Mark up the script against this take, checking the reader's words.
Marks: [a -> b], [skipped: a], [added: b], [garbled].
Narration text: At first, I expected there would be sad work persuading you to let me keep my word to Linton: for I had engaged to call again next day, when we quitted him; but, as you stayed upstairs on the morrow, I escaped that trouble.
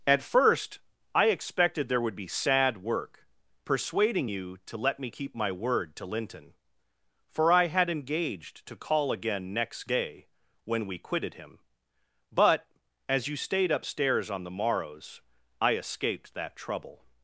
At first, I expected there would be sad work persuading you to let me keep my word to Linton: for I had engaged to call again next day, when we quitted him; but, as you stayed upstairs on the [morrow, -> morrows] I escaped that trouble.